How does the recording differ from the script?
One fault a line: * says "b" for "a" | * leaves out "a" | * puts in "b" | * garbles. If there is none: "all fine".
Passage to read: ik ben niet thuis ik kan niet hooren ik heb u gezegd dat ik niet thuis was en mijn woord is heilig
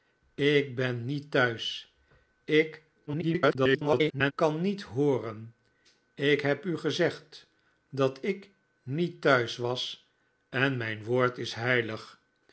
* garbles